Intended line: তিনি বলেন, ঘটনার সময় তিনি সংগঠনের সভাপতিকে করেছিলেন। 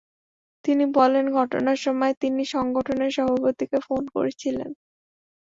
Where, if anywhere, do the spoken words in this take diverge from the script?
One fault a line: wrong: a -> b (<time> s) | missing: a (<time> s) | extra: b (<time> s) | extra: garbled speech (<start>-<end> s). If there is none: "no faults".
extra: ফোন (3.9 s)